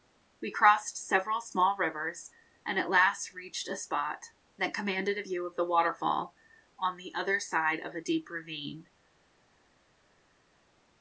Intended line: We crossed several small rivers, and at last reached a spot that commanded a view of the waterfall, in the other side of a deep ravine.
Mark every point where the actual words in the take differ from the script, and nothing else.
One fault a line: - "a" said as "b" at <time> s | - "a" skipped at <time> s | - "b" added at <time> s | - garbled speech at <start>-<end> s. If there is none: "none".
- "in" said as "on" at 6.8 s